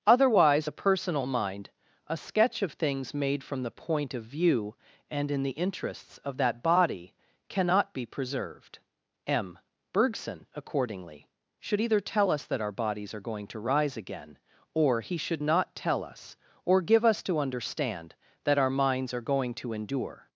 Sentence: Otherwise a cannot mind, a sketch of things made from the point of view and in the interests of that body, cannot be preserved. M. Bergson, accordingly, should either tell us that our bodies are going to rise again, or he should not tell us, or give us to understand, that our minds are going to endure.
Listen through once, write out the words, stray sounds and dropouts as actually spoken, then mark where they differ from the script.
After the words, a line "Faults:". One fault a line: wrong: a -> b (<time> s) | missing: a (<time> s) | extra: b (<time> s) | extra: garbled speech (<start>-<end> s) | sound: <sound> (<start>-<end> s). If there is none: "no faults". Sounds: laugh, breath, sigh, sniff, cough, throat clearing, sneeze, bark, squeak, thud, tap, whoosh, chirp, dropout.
Otherwise a personal mind, a sketch of things made from the point of view and in the interests of that body, cannot be preserved. M. Bergson, accordingly, should either tell us that our bodies are going to rise again, or he should not tell us, or give us to understand, that our minds are going to endure.
Faults:
wrong: cannot -> personal (0.7 s)